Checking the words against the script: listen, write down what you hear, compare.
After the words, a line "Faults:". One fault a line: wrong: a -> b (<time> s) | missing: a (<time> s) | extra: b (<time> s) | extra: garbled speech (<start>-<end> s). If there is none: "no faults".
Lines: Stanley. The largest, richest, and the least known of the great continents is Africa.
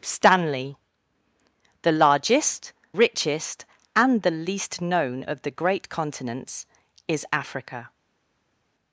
Stanley. The largest, richest, and the least known of the great continents is Africa.
Faults:
no faults